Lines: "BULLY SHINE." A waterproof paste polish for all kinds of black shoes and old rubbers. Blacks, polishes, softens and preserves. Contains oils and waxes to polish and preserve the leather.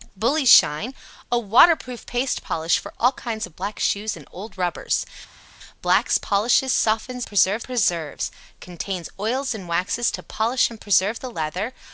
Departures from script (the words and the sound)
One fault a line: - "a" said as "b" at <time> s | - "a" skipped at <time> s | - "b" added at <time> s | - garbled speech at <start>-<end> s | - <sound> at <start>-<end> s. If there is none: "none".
- "and" said as "preserve" at 7.3 s